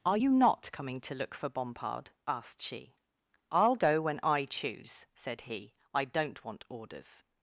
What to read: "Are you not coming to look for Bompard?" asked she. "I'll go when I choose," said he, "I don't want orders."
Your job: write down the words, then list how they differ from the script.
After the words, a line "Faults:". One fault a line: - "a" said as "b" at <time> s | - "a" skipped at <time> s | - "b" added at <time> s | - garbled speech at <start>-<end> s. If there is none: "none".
"Are you not coming to look for Bompard?" asked she. "I'll go when I choose," said he, "I don't want orders."
Faults:
none